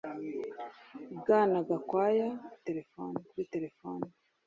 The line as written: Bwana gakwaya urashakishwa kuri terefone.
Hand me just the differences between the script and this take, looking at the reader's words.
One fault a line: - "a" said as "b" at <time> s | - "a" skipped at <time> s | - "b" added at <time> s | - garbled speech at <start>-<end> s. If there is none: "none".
- "urashakishwa" said as "terefone" at 2.7 s